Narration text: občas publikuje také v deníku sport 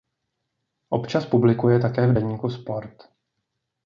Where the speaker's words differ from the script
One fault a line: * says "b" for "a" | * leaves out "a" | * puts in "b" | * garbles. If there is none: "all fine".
all fine